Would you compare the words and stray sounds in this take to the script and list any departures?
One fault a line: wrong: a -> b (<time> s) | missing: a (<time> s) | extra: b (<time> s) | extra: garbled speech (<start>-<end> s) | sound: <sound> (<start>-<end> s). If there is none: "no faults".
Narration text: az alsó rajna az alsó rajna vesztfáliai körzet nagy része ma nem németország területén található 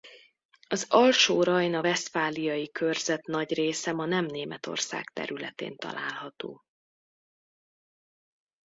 missing: az alsó rajna (1.8 s)